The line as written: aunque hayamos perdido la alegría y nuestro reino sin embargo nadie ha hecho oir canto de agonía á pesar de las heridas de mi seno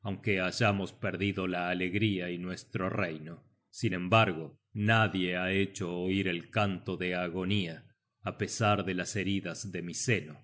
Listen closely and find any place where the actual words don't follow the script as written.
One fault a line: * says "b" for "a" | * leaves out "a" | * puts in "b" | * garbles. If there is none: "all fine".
* puts in "el"